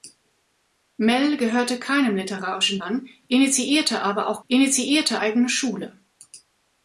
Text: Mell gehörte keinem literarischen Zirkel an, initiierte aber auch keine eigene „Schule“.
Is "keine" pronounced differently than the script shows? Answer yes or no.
yes